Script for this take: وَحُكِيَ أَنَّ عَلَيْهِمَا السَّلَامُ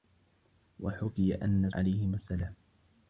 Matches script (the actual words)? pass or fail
pass